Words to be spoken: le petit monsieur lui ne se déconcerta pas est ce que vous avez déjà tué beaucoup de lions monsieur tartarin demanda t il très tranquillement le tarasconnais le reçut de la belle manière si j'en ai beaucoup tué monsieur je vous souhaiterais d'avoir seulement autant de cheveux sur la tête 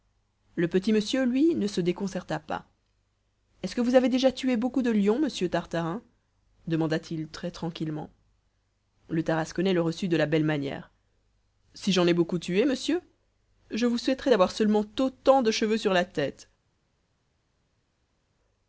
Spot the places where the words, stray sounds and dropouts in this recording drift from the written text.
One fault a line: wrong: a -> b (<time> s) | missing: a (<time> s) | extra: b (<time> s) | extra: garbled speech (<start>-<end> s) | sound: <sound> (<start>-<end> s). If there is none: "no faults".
no faults